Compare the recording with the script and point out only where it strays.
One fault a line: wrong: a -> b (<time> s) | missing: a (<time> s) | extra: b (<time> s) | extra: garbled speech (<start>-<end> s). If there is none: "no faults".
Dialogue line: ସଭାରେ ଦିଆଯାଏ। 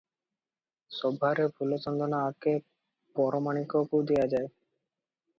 extra: ଫୁଲଚନ୍ଦନ ଆଗେ ପରମାଣିକକୁ (1.6 s)